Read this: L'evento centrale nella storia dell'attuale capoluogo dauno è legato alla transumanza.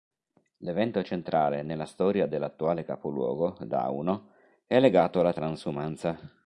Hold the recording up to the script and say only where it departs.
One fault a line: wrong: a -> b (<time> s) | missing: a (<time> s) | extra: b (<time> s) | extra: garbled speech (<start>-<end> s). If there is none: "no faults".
no faults